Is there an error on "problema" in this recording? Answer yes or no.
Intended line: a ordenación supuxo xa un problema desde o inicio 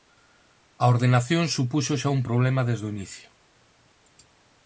no